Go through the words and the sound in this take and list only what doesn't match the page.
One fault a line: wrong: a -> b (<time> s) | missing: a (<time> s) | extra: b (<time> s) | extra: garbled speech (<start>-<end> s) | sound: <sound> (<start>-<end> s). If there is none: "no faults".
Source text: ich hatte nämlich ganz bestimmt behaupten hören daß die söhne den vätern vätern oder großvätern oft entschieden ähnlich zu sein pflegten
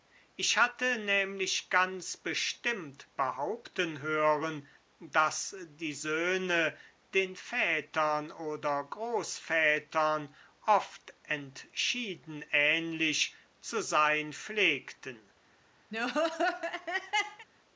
missing: vätern (8.3 s)
sound: laugh (15.9-17.5 s)